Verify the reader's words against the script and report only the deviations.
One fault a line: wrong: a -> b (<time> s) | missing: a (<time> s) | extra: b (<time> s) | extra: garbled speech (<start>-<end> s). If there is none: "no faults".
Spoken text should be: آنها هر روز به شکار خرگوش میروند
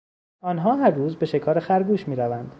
no faults